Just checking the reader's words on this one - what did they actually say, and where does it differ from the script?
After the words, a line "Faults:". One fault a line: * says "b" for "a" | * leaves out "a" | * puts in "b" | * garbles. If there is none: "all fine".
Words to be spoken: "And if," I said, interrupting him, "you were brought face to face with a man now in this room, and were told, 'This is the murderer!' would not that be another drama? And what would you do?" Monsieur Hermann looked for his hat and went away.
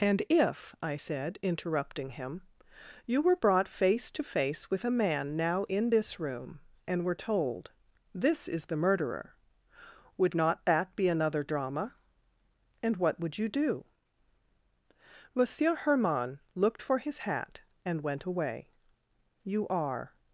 "And if," I said, interrupting him, "you were brought face to face with a man now in this room, and were told, 'This is the murderer!' would not that be another drama? And what would you do?" Monsieur Hermann looked for his hat and went away. "You are
Faults:
* puts in "You are"